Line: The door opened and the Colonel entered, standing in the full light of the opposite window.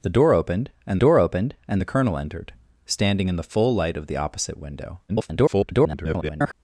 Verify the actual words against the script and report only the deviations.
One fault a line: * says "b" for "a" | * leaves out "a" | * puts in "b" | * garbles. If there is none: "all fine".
* puts in "door opened and"
* garbles